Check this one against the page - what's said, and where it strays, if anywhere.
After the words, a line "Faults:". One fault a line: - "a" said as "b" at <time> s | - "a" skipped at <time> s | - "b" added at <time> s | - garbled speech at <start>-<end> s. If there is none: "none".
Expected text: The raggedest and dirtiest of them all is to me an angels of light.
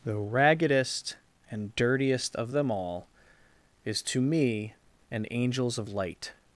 The raggedest and dirtiest of them all is to me an angels of light.
Faults:
none